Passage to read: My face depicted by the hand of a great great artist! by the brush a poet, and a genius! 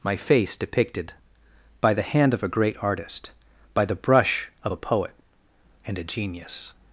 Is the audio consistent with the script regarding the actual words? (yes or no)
no